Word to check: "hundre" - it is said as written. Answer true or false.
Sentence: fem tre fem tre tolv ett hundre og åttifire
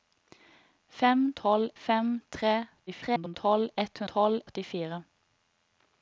false